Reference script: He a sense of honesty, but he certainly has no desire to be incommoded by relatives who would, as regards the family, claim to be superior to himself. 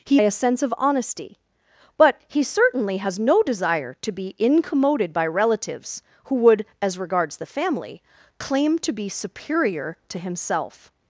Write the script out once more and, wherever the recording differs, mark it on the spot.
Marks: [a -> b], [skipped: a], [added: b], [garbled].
He a sense of honesty, but he certainly has no desire to be incommoded by relatives who would, as regards the family, claim to be superior to himself.